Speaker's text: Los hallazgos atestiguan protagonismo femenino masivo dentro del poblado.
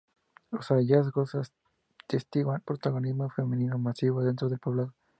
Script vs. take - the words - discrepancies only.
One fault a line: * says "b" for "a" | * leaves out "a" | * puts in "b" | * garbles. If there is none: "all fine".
all fine